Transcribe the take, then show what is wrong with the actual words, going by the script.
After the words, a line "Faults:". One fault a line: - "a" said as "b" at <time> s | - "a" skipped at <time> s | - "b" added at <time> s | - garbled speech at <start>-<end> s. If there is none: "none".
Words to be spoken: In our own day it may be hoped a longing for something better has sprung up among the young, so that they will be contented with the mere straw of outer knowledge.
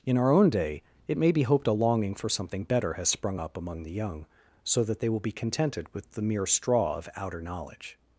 In our own day it may be hoped a longing for something better has sprung up among the young, so that they will be contented with the mere straw of outer knowledge.
Faults:
none